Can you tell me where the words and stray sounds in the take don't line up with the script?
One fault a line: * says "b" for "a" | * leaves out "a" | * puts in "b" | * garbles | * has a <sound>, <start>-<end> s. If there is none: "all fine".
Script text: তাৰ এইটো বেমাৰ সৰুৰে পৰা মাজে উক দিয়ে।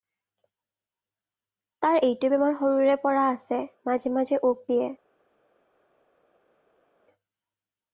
* puts in "আছে মাজে"